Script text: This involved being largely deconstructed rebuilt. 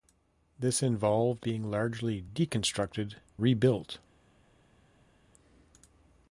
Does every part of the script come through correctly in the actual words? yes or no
yes